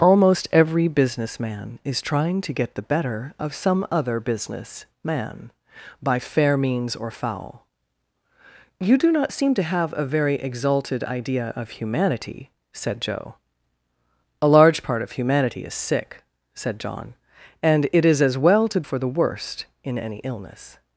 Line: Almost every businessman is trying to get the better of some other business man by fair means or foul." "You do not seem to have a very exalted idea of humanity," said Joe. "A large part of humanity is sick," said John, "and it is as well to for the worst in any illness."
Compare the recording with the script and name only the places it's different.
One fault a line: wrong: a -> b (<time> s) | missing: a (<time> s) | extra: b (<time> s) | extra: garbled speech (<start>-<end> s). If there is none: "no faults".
no faults